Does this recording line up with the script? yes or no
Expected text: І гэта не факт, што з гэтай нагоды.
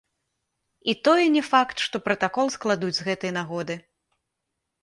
no